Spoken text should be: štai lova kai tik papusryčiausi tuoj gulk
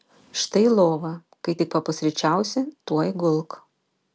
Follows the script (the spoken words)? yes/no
yes